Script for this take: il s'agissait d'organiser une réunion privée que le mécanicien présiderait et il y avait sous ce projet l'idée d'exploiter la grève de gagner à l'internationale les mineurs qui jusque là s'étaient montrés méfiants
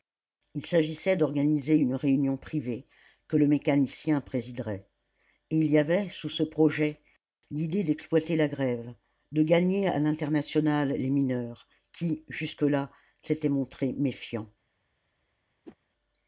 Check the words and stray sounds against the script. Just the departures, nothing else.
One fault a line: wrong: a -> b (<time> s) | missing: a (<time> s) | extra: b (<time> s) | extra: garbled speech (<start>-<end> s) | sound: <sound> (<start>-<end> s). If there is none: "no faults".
sound: whoosh (15.6-15.8 s)